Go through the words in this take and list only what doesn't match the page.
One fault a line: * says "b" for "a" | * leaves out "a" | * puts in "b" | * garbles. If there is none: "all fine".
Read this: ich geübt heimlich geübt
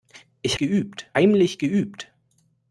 all fine